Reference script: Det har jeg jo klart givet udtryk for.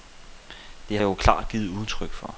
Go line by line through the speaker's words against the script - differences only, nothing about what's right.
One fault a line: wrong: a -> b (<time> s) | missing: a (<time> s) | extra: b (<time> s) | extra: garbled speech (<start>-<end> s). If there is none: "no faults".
missing: har (1.0 s)